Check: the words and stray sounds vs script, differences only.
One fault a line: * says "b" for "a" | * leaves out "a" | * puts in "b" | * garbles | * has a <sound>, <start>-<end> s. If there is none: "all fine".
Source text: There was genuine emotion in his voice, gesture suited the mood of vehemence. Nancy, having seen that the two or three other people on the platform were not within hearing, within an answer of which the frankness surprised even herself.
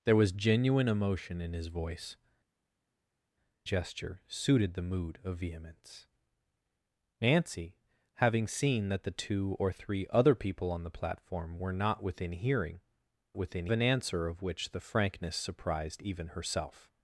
all fine